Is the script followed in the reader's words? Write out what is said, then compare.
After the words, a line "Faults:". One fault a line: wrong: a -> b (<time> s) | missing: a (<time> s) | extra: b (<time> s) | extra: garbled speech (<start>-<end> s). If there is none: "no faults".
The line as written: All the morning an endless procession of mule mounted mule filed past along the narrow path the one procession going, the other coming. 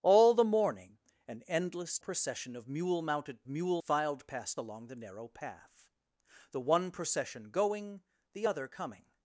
All the morning an endless procession of mule mounted mule filed past along the narrow path the one procession going, the other coming.
Faults:
no faults